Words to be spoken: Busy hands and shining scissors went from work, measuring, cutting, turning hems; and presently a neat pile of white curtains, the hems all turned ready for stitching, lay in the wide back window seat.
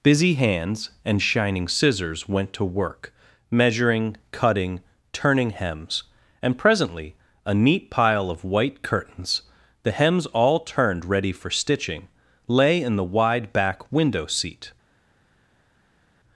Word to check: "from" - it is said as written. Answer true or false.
false